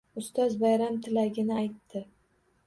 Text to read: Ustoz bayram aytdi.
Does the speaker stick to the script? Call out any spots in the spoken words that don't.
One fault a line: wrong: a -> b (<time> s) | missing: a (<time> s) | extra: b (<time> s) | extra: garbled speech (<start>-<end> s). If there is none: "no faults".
extra: tilagini (1.1 s)